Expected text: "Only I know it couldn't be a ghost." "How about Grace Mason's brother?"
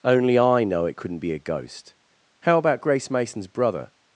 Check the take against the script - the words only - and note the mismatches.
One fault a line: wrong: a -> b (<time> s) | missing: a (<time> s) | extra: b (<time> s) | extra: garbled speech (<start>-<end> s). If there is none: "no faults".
no faults